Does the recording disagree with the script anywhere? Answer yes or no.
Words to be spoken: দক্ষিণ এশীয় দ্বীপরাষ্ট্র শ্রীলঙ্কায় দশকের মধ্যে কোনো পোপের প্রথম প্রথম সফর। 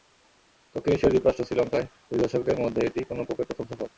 yes